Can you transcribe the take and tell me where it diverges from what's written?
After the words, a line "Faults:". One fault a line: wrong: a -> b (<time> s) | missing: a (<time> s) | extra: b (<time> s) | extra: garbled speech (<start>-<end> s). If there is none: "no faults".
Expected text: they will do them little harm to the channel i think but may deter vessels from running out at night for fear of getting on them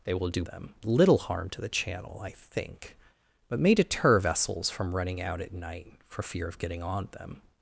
they will do them little harm to the channel i think but may deter vessels from running out at night for fear of getting on them
Faults:
no faults